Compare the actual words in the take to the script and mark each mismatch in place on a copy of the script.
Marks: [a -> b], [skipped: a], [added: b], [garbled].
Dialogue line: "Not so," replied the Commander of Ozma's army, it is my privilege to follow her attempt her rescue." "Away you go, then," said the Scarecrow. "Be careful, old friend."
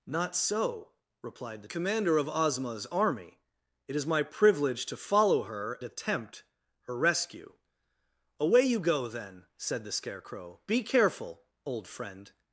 "Not so," replied the Commander of Ozma's army, it is my privilege to follow her attempt her rescue." "Away you go, then," said the Scarecrow. "Be careful, old friend."